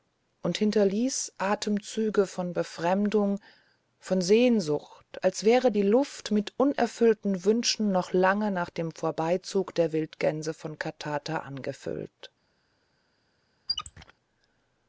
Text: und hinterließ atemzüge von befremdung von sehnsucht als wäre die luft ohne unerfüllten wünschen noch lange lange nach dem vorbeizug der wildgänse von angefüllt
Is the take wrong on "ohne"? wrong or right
wrong